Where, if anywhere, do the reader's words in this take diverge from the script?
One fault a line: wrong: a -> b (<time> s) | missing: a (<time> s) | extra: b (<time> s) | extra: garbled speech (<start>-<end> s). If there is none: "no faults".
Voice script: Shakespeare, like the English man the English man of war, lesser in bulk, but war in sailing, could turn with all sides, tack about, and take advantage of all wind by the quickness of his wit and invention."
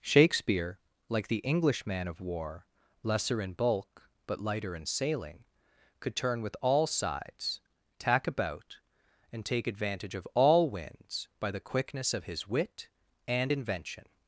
missing: the English man (2.1 s)
wrong: war -> lighter (4.4 s)
wrong: wind -> winds (10.7 s)